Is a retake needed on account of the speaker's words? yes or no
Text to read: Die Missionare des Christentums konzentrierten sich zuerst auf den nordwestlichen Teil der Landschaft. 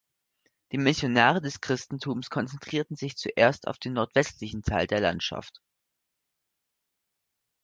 no